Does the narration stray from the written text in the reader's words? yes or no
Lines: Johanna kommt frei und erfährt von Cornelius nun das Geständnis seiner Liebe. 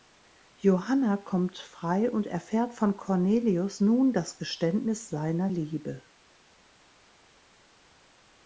no